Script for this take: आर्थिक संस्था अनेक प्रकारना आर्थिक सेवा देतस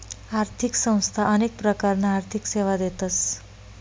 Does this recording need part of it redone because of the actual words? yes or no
no